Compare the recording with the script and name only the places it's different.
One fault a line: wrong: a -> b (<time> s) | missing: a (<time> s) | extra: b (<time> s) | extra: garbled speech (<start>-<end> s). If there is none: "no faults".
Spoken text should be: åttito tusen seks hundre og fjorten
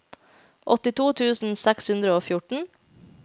no faults